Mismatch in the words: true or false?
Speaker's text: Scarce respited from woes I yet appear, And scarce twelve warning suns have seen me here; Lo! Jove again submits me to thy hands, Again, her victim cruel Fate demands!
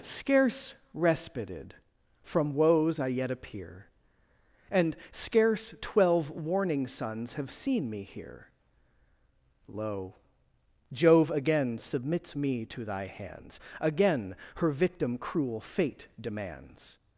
false